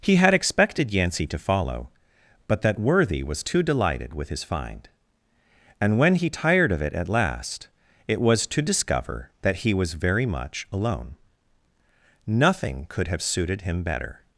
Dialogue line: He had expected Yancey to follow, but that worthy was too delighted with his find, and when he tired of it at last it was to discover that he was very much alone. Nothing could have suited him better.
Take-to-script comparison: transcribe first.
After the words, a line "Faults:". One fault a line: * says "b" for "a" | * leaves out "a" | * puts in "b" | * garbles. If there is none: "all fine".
He had expected Yancey to follow, but that worthy was too delighted with his find, and when he tired of it at last it was to discover that he was very much alone. Nothing could have suited him better.
Faults:
all fine